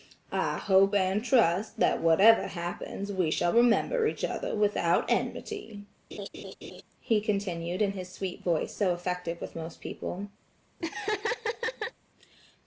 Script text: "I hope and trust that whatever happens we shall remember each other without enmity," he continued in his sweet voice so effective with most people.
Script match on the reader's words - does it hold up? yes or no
yes